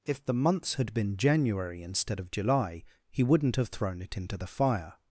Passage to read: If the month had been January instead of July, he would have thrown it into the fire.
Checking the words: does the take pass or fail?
fail